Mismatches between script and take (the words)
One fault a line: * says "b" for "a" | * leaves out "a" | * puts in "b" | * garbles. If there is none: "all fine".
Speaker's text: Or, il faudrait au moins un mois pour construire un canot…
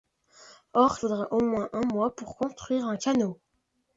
* leaves out "il"